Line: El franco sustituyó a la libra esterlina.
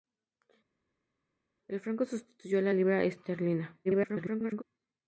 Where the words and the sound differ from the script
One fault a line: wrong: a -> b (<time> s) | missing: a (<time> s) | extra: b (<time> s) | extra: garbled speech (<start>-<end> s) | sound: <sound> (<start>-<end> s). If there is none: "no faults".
extra: garbled speech (3.8-4.6 s)